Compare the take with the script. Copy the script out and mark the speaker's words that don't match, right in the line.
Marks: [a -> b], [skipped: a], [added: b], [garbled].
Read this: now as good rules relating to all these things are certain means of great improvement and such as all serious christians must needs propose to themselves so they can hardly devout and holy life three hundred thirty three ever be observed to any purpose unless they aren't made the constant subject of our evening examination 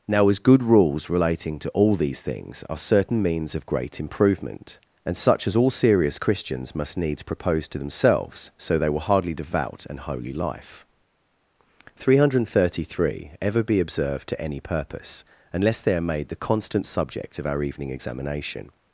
now as good rules relating to all these things are certain means of great improvement and such as all serious christians must needs propose to themselves so they [can -> will] hardly devout and holy life three hundred thirty three ever be observed to any purpose unless they [aren't -> are] made the constant subject of our evening examination